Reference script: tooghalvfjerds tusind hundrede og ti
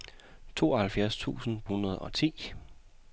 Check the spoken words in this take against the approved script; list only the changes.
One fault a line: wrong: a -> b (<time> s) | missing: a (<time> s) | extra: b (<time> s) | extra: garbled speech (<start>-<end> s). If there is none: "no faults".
no faults